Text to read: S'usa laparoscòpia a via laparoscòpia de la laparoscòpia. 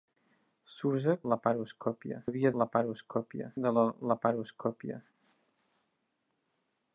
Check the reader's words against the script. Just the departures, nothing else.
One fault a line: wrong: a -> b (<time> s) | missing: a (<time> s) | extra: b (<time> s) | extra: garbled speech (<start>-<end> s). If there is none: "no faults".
no faults